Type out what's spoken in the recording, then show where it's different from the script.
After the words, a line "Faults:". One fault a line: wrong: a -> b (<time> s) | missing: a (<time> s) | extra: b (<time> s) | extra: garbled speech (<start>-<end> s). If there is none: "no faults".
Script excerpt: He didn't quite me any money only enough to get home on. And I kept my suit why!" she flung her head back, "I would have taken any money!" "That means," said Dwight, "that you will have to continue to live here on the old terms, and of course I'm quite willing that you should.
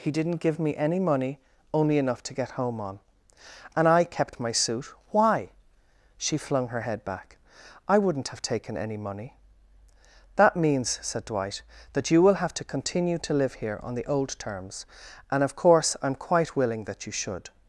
He didn't give me any money only enough to get home on. And I kept my suit why!" she flung her head back, "I wouldn't have taken any money!" "That means," said Dwight, "that you will have to continue to live here on the old terms, and of course I'm quite willing that you should.
Faults:
wrong: quite -> give (0.5 s)
wrong: would -> wouldn't (8.0 s)